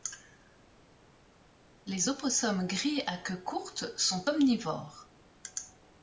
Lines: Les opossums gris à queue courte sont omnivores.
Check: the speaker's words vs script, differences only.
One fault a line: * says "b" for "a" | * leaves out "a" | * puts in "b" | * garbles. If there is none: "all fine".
all fine